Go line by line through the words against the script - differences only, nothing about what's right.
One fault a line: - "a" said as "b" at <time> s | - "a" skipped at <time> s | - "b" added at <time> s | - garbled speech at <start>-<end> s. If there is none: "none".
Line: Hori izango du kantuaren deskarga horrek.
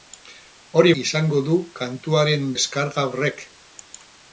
none